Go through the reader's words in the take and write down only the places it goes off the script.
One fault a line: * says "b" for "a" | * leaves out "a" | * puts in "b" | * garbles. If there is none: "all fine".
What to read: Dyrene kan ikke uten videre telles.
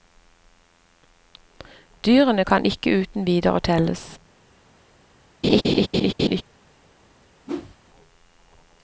all fine